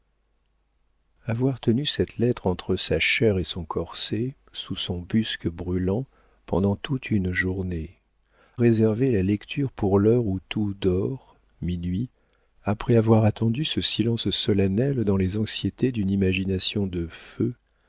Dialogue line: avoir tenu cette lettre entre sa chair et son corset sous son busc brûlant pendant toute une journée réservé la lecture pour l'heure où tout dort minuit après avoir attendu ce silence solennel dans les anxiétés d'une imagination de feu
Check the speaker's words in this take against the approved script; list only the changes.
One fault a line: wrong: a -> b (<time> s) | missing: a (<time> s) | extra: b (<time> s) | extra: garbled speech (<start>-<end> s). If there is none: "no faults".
no faults